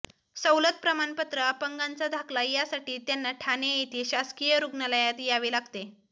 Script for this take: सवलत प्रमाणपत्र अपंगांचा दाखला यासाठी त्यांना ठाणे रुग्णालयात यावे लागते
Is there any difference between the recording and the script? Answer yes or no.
yes